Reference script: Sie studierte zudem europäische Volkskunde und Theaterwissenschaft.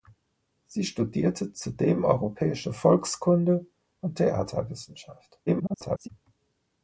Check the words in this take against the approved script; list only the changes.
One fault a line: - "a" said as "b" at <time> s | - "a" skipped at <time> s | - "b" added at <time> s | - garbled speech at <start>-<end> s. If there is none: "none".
- garbled speech at 5.5-6.1 s